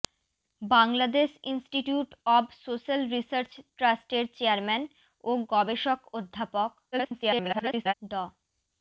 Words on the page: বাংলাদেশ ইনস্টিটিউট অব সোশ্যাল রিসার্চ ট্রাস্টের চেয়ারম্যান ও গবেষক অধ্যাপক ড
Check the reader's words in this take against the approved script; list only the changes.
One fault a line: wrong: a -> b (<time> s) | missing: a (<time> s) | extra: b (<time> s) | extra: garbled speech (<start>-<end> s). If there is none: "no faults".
extra: garbled speech (6.9-7.9 s)